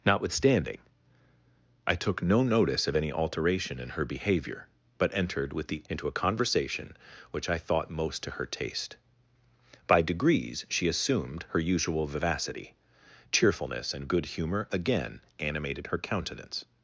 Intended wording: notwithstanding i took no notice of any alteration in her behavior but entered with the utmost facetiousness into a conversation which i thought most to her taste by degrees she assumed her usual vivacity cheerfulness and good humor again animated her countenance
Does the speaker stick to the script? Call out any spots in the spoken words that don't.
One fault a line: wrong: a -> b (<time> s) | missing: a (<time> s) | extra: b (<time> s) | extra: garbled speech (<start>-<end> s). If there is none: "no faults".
missing: utmost facetiousness (5.8 s)